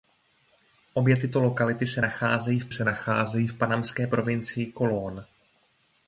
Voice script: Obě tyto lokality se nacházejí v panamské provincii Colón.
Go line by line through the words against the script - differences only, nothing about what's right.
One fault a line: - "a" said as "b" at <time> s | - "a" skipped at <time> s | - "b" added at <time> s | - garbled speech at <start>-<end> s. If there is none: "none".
- "se nacházejí v" added at 2.7 s